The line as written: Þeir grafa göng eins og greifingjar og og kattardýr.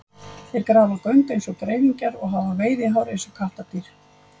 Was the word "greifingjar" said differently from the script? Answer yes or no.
no